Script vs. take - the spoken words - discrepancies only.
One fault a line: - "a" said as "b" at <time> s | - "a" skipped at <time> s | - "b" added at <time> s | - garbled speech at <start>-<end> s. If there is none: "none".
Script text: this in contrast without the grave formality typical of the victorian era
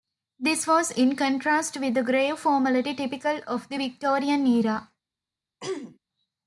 - "was" added at 0.7 s
- "without" said as "with" at 1.8 s